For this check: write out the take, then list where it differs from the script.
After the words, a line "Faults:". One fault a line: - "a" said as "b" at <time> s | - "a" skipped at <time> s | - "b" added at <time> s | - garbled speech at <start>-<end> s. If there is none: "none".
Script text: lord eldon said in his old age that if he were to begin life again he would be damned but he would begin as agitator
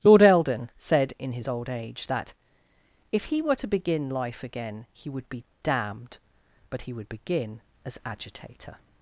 lord eldon said in his old age that if he were to begin life again he would be damned but he would begin as agitator
Faults:
none